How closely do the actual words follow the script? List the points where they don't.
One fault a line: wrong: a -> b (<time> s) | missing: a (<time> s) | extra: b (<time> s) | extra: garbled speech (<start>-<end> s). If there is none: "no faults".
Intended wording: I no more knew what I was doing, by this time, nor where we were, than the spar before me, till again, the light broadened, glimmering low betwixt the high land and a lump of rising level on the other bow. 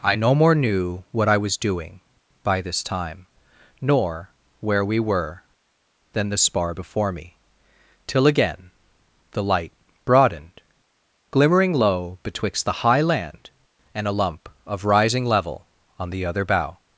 no faults